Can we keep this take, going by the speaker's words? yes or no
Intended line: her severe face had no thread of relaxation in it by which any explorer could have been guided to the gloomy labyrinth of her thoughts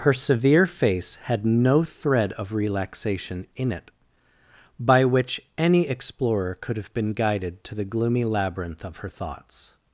yes